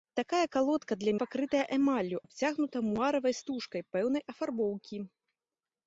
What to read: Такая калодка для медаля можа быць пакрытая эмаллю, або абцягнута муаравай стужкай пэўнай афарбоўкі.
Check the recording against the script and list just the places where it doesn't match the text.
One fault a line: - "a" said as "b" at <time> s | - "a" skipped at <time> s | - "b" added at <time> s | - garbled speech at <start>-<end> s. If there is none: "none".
- "медаля можа быць" skipped at 1.1 s
- "або" skipped at 2.2 s